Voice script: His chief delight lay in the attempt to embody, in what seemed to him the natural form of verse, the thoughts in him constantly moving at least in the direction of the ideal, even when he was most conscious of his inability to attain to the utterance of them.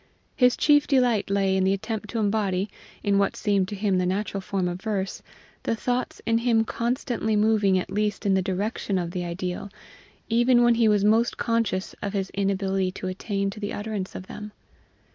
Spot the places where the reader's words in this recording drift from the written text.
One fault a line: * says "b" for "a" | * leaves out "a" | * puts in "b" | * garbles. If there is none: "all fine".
all fine